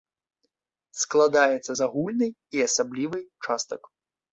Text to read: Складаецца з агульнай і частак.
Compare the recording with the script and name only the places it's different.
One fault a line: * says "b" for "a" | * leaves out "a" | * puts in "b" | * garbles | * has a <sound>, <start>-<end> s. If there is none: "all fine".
* puts in "асаблівай"